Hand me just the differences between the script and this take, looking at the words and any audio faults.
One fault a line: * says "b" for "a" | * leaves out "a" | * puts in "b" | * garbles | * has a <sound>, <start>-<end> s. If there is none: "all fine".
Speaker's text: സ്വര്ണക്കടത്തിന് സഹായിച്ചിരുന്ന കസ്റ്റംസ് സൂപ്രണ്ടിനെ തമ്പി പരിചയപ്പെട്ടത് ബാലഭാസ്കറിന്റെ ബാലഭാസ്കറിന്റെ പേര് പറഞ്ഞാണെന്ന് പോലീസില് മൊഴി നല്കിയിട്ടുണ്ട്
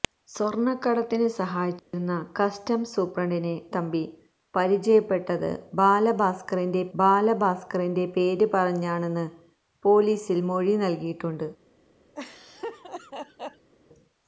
* has a dropout, 1.8-1.9 s
* has a laugh, 12.1-13.7 s